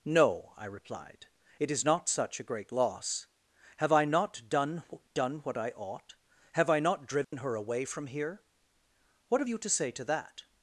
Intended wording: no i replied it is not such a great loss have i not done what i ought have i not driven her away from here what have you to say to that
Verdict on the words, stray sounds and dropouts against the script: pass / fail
fail